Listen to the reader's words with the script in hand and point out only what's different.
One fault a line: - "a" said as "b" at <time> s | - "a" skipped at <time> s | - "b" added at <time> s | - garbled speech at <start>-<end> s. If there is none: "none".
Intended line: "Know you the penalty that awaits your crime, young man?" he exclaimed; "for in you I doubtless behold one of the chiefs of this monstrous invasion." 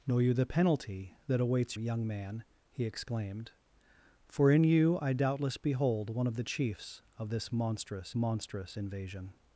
- "your crime" skipped at 1.8 s
- "monstrous" added at 8.1 s